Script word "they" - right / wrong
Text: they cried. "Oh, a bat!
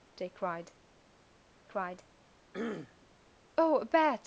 right